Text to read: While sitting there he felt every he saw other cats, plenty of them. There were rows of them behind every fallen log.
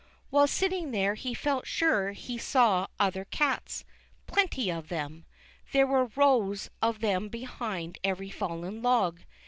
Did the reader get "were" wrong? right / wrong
right